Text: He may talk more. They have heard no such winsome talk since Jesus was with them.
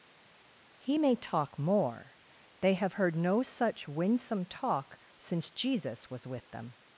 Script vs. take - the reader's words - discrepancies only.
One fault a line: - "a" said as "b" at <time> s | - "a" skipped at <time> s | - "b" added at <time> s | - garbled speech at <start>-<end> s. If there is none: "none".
none